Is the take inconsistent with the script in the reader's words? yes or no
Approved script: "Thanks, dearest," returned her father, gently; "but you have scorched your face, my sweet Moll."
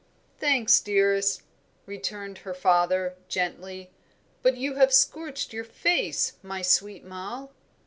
no